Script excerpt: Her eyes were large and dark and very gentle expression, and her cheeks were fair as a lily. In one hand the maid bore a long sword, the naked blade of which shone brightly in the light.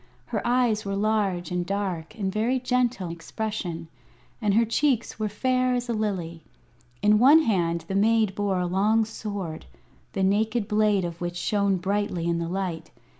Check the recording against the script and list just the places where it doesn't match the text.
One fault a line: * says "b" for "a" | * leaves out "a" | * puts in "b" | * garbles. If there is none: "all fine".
all fine